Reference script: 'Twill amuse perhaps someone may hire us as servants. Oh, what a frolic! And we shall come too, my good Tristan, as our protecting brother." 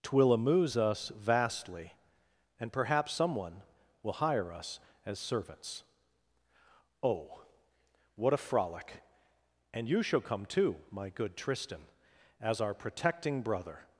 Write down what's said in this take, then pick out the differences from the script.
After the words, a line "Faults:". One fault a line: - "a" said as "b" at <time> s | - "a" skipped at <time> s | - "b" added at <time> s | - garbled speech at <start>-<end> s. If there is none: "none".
'Twill amuse us vastly, and perhaps someone will hire us as servants. Oh, what a frolic! And you shall come too, my good Tristan, as our protecting brother."
Faults:
- "us vastly and" added at 0.8 s
- "may" said as "will" at 4.0 s
- "we" said as "you" at 9.9 s